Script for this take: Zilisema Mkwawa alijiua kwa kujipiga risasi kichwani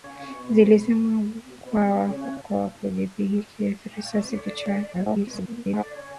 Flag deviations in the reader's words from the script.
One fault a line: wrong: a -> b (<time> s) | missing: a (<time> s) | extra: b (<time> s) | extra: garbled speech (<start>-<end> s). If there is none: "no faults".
missing: alijiua (2.4 s)
extra: garbled speech (4.9-5.8 s)